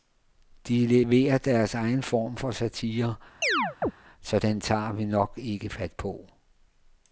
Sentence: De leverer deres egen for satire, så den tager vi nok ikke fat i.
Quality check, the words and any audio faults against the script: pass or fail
fail